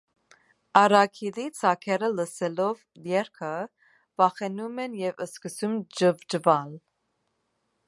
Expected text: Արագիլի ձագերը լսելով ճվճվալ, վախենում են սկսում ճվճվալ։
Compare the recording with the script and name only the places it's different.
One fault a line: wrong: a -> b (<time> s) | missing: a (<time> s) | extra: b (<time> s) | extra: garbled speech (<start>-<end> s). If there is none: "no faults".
wrong: ճվճվալ -> երգը (3.1 s)
extra: և (5.1 s)